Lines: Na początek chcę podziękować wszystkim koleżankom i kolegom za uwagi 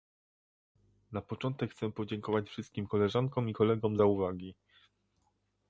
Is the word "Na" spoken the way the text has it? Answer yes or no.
yes